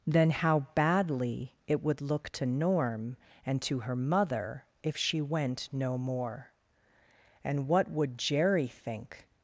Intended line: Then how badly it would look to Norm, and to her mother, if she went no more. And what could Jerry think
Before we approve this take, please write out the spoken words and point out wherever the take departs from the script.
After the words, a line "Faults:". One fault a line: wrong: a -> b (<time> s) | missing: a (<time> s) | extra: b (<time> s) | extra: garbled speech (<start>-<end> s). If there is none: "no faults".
Then how badly it would look to Norm, and to her mother, if she went no more. And what would Jerry think
Faults:
wrong: could -> would (7.9 s)